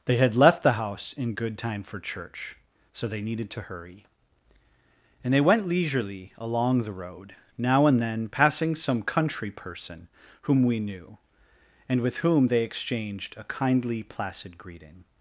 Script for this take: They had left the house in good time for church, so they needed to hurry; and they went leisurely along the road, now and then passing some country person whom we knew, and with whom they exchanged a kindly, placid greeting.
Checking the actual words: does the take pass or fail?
pass